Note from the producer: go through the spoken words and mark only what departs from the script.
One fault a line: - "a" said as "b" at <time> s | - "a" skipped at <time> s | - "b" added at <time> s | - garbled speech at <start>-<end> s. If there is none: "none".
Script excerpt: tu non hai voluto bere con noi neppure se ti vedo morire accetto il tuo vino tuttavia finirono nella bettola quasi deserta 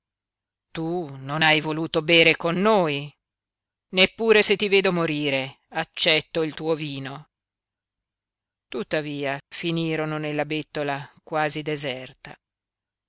none